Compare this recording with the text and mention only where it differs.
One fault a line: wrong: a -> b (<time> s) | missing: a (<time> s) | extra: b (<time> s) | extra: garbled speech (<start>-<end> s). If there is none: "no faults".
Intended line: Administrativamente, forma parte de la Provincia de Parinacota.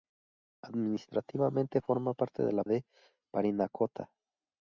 missing: Provincia (2.6 s)